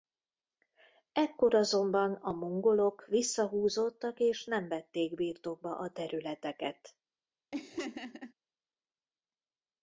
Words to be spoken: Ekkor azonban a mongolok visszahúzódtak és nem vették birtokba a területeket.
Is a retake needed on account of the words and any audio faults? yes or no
yes